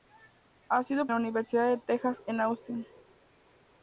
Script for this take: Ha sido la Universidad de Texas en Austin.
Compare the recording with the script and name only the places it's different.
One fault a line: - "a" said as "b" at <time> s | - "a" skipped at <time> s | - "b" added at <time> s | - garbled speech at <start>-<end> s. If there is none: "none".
none